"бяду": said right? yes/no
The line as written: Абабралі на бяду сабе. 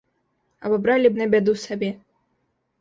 yes